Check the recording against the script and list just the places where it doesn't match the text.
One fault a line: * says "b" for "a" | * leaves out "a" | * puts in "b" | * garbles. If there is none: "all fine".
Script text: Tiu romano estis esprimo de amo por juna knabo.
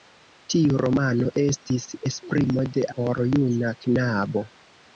* leaves out "amo"